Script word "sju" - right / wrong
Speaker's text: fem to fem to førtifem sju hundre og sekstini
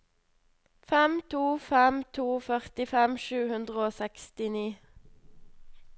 right